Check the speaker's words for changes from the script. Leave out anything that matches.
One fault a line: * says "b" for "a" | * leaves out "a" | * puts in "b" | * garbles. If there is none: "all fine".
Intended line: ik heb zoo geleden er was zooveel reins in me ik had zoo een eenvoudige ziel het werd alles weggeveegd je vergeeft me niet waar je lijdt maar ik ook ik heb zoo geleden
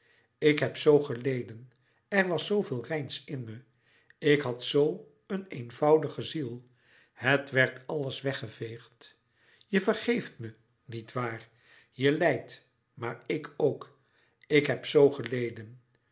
all fine